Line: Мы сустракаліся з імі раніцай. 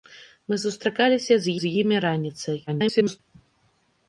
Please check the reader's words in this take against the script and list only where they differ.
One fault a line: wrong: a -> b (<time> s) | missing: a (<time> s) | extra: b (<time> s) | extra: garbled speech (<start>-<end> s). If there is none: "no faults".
extra: з (1.6 s)
extra: garbled speech (2.7-3.2 s)